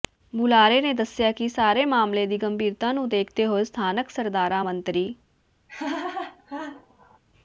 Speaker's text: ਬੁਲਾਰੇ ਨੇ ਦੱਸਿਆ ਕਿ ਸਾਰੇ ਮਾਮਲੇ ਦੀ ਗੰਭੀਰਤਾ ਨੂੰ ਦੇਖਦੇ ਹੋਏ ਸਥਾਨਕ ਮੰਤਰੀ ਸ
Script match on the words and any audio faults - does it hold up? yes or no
no